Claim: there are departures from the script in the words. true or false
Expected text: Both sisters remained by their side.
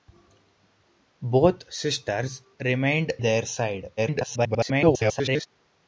true